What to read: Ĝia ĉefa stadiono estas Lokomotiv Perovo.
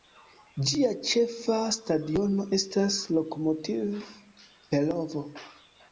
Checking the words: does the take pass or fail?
pass